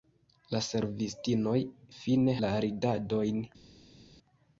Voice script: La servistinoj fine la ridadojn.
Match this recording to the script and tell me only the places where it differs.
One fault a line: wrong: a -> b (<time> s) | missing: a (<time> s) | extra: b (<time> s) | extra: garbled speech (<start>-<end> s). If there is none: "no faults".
no faults